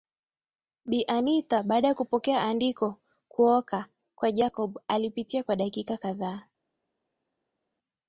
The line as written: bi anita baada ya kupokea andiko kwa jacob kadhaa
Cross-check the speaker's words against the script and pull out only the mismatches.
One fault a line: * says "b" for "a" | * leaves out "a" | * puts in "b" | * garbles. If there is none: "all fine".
* puts in "kuoka"
* puts in "alipitia kwa dakika"